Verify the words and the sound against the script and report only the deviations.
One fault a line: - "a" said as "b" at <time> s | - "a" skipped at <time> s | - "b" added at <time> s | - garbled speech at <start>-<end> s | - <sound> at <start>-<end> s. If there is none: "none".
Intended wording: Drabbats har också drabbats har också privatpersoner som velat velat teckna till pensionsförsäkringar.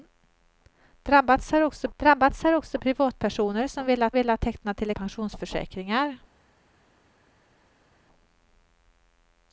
none